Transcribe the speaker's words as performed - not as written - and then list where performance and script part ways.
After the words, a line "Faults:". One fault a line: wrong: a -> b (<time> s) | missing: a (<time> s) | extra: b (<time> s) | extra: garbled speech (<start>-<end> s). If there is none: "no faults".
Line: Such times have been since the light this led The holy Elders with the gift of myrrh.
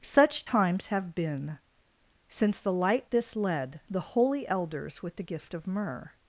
Such times have been since the light this led The holy Elders with the gift of myrrh.
Faults:
no faults